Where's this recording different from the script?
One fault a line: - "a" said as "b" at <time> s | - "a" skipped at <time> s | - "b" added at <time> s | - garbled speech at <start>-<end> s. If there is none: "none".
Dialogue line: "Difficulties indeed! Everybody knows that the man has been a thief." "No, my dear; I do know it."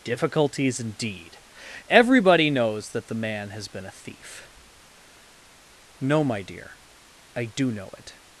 none